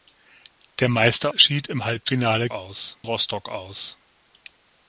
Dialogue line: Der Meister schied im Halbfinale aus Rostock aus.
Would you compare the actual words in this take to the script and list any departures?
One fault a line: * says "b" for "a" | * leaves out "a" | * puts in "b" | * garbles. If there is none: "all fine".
all fine